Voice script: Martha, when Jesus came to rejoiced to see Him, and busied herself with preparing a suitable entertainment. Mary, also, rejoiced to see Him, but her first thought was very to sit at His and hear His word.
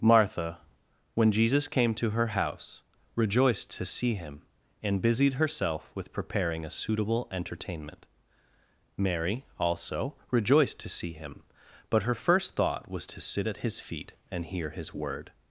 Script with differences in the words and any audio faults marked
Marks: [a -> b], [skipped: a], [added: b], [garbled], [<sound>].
Martha, when Jesus came to [added: her house] rejoiced to see Him, and busied herself with preparing a suitable entertainment. Mary, also, rejoiced to see Him, but her first thought was [skipped: very] to sit at His [added: feet] and hear His word.